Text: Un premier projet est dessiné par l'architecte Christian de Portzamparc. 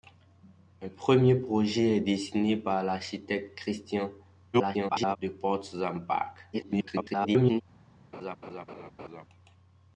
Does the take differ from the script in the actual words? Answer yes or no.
yes